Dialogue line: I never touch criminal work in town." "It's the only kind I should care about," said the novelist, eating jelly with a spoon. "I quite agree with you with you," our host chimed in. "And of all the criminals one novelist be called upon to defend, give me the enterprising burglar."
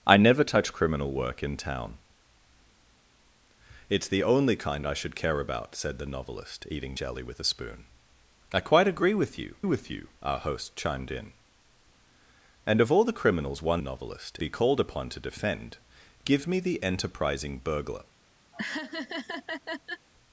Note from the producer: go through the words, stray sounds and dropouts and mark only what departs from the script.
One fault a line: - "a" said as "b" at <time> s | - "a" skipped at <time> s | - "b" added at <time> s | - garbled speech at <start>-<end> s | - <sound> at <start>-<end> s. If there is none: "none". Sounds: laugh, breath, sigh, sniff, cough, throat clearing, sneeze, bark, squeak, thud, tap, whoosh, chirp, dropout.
- laugh at 18.5-20.1 s